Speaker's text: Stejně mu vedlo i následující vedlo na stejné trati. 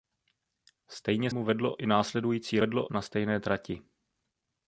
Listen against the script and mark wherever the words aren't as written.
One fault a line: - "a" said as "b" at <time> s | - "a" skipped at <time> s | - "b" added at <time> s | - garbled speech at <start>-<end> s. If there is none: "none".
none